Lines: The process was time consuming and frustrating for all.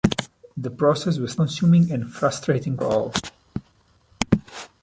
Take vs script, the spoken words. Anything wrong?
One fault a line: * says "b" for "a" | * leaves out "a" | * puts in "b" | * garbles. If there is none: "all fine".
* leaves out "time"
* leaves out "for"